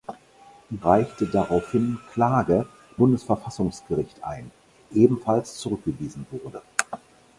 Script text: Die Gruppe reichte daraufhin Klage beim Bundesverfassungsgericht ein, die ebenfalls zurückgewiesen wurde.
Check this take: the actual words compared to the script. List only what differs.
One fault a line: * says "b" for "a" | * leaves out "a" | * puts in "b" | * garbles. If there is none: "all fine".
* leaves out "Gruppe"
* leaves out "beim"
* leaves out "die"